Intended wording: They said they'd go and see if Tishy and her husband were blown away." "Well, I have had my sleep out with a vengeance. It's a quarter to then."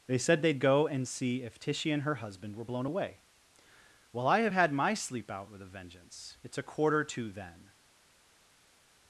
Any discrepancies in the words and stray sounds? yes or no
no